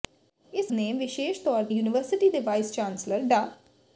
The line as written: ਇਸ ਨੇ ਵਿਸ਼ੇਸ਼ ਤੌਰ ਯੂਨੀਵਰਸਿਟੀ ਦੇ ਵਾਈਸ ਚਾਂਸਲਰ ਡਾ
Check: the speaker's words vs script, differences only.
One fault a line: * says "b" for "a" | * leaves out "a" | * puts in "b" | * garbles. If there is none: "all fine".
all fine